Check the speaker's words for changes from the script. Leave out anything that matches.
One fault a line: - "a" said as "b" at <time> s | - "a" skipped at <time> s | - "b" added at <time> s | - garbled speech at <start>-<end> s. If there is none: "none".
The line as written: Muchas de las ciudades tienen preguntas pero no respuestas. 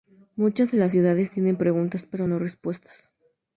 none